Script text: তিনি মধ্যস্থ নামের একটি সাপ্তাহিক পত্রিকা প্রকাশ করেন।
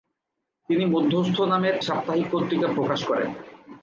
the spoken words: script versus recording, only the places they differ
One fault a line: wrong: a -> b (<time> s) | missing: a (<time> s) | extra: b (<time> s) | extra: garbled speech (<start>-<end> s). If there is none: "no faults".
missing: একটি (1.8 s)